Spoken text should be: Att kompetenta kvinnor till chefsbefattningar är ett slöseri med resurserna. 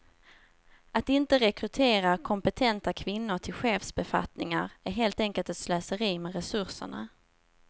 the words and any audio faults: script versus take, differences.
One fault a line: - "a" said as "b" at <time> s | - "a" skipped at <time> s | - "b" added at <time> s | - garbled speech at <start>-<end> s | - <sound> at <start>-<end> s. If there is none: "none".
- "inte rekrytera" added at 1.1 s
- "helt enkelt" added at 4.9 s